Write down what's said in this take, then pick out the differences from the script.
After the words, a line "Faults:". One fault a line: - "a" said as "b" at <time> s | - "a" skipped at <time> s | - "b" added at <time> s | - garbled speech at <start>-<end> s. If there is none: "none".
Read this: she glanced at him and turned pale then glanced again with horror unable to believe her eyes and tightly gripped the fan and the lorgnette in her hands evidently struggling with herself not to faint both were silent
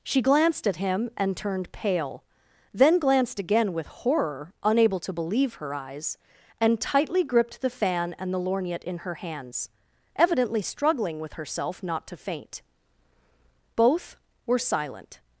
she glanced at him and turned pale then glanced again with horror unable to believe her eyes and tightly gripped the fan and the lorgnette in her hands evidently struggling with herself not to faint both were silent
Faults:
none